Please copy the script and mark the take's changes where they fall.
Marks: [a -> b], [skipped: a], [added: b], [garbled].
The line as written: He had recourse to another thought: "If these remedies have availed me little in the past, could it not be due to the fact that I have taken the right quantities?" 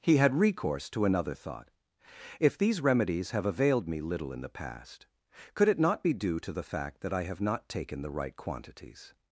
He had recourse to another thought: "If these remedies have availed me little in the past, could it not be due to the fact that I have [added: not] taken the right quantities?"